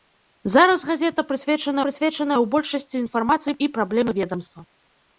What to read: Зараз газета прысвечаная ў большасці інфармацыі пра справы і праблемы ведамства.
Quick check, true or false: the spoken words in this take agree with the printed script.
false